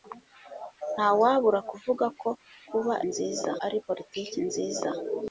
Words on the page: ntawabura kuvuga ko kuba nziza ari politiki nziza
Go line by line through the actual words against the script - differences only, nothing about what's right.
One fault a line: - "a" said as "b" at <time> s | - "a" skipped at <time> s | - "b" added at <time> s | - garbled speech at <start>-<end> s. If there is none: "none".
none